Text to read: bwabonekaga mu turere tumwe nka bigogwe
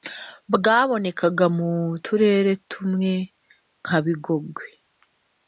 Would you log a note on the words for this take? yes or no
no